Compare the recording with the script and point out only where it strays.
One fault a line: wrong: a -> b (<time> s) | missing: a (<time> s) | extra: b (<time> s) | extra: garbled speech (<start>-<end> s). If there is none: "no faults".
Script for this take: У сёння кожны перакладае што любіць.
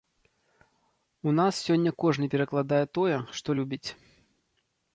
extra: нас (1.4 s)
extra: тое (3.0 s)